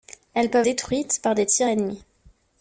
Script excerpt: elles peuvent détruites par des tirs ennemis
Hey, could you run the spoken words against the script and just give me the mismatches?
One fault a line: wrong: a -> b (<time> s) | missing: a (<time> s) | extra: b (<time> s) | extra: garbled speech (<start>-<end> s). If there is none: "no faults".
no faults